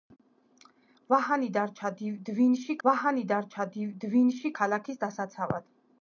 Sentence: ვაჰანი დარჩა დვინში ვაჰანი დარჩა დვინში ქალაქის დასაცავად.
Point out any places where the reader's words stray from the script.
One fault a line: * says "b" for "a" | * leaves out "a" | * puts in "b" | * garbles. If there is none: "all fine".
all fine